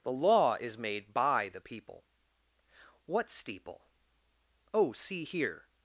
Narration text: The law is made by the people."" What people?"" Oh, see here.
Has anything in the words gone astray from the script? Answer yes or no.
yes